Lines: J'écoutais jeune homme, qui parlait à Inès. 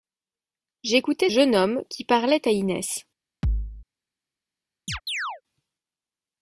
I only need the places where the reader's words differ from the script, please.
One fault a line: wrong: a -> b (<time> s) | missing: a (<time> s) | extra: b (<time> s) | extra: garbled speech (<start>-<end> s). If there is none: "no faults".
no faults